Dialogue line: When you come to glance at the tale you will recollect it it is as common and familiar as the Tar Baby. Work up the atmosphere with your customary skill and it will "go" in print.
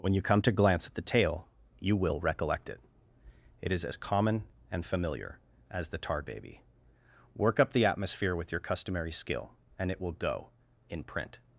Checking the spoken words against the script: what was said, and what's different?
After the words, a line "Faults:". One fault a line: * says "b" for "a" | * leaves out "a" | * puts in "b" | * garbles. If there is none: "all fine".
When you come to glance at the tale you will recollect it it is as common and familiar as the Tar Baby. Work up the atmosphere with your customary skill and it will "go" in print.
Faults:
all fine